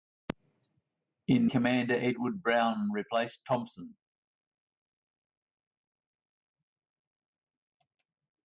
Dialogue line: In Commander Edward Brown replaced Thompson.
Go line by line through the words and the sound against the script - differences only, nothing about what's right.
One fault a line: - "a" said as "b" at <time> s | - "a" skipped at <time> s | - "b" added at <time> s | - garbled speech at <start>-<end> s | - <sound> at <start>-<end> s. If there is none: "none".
none